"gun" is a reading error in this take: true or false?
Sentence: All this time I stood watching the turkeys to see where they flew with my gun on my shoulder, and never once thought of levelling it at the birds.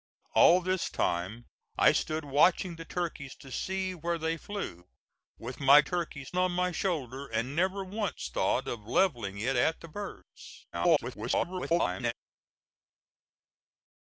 true